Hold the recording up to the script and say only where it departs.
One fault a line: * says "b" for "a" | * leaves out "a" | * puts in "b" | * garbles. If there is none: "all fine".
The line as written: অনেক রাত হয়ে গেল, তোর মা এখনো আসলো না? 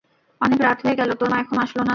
all fine